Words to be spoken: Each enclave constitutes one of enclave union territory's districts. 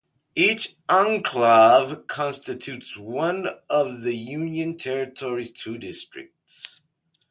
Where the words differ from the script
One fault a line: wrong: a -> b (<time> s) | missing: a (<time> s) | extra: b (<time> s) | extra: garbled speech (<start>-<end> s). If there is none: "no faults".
wrong: enclave -> the (4.0 s)
extra: two (5.5 s)